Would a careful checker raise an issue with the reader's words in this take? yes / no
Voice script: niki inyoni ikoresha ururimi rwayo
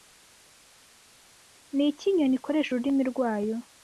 no